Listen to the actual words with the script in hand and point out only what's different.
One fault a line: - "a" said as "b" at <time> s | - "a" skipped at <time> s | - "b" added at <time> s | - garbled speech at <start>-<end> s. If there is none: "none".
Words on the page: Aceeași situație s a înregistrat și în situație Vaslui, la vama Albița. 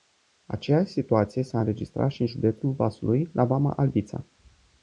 - "situație" said as "județul" at 2.3 s